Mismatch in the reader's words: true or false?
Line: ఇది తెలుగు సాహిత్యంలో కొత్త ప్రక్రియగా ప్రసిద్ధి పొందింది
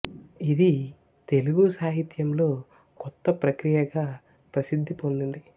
false